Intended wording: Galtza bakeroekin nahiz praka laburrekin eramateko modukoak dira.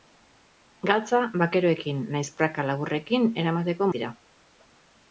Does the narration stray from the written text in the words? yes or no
yes